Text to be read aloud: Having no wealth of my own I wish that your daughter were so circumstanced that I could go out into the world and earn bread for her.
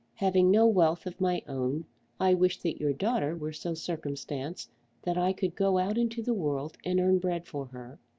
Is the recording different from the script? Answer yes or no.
no